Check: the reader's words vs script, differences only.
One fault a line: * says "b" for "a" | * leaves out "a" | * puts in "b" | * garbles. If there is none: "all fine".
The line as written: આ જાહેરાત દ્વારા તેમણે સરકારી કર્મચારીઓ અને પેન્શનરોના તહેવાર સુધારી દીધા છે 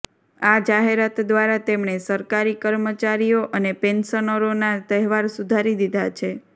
all fine